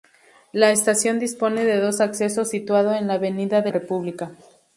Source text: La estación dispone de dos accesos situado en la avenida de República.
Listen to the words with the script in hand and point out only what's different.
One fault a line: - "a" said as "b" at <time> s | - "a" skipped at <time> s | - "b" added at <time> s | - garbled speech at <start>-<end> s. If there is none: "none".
none